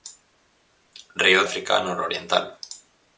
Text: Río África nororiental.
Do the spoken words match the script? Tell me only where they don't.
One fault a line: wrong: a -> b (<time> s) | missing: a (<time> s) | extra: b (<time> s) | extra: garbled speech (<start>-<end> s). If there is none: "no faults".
no faults